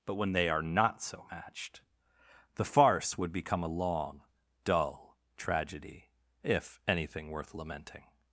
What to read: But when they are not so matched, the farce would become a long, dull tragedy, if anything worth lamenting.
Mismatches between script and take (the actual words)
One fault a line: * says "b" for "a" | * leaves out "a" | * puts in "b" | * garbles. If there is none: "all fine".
all fine